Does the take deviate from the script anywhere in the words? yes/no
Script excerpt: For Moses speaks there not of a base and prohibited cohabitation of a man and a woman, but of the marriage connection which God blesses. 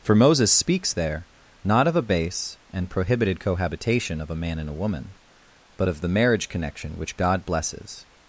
no